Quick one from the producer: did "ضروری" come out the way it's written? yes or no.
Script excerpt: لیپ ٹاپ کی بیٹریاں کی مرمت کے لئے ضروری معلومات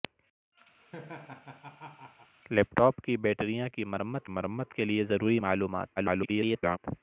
yes